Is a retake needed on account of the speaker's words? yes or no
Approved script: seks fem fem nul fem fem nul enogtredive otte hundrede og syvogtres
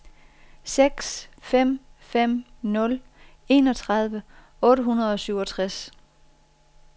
yes